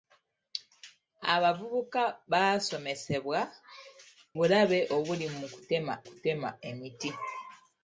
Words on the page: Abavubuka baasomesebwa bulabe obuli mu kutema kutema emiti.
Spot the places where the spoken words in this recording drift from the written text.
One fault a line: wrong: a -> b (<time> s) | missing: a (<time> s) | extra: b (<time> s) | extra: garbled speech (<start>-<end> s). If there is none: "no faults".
no faults